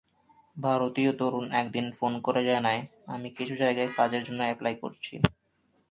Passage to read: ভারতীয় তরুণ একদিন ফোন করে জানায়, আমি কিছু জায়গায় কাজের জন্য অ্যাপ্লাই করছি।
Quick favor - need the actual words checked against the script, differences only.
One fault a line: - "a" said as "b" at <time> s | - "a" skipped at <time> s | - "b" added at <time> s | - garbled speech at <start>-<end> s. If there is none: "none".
none